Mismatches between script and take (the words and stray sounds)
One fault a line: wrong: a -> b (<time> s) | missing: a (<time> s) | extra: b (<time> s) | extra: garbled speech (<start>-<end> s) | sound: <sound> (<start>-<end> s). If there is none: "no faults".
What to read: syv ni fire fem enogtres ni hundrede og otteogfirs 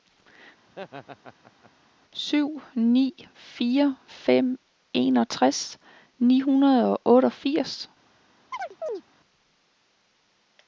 sound: laugh (0.7-1.7 s)
sound: chirp (8.5-9.0 s)